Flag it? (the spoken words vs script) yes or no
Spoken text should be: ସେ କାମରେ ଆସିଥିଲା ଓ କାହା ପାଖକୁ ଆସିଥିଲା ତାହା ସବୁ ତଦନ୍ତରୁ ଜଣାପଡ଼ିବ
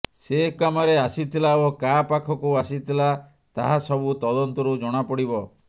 no